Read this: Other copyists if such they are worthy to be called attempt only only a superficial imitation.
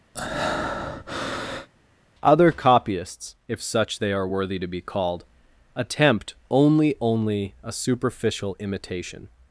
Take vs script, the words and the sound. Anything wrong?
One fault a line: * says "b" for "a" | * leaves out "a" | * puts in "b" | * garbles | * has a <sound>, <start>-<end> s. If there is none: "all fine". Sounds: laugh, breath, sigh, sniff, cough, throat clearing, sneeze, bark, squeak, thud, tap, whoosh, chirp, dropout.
* has a breath, 0.1-1.7 s